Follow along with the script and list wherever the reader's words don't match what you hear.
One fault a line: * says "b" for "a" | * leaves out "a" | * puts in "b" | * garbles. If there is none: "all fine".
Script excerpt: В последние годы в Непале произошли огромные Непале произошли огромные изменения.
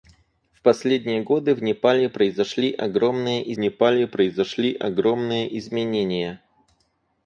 all fine